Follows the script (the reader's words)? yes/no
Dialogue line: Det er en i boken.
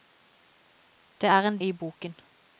yes